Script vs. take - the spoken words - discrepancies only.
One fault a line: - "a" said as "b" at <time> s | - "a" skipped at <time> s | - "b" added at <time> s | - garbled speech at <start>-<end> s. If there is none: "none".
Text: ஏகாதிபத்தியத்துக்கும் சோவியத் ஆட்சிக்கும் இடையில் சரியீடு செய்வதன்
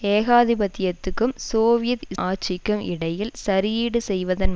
none